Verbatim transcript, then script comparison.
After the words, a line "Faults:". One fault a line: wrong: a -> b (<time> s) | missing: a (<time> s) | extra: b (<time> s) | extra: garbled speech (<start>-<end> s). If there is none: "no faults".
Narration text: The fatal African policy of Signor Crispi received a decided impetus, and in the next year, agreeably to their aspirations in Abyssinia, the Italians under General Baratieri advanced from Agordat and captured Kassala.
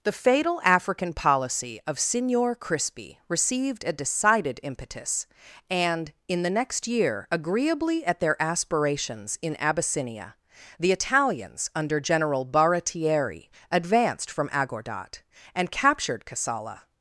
The fatal African policy of Signor Crispi received a decided impetus, and in the next year, agreeably at their aspirations in Abyssinia, the Italians under General Baratieri advanced from Agordat and captured Kassala.
Faults:
wrong: to -> at (8.1 s)